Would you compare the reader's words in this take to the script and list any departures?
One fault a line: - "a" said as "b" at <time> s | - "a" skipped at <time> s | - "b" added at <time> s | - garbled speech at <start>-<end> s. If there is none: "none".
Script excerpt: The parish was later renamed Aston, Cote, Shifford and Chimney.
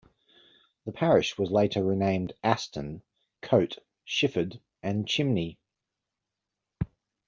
none